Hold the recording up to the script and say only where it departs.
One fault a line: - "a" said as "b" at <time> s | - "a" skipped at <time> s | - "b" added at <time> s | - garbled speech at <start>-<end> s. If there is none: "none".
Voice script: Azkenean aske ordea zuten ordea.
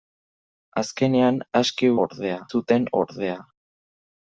none